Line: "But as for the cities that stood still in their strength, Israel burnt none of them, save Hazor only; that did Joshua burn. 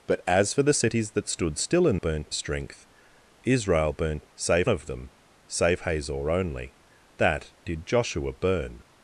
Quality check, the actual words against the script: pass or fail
fail